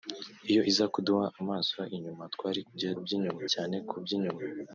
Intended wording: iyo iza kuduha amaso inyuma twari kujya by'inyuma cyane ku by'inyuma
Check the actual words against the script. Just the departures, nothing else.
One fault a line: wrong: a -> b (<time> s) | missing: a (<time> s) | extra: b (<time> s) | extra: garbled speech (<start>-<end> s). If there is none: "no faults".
no faults